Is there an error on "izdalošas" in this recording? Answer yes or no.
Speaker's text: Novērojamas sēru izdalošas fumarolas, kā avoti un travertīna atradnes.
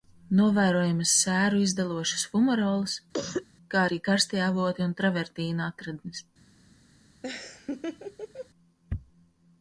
no